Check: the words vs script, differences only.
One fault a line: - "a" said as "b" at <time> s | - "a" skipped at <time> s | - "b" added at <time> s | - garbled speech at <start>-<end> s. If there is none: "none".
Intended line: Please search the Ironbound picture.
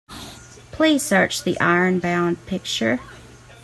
none